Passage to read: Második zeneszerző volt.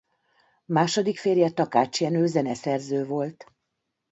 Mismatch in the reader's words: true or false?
true